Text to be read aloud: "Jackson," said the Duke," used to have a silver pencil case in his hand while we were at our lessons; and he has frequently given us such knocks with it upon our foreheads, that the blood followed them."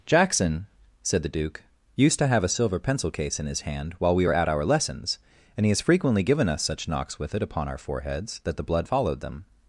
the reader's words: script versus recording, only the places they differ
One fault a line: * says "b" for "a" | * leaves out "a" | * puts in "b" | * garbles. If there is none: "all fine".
all fine